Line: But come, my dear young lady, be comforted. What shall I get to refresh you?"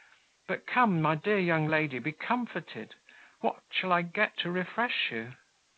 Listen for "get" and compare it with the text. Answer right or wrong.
right